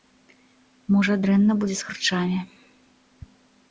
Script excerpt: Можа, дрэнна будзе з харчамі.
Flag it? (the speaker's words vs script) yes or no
no